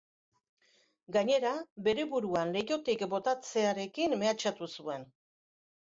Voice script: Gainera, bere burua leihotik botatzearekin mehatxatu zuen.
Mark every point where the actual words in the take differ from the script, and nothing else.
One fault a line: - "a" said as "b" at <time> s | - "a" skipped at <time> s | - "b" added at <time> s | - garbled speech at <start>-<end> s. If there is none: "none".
none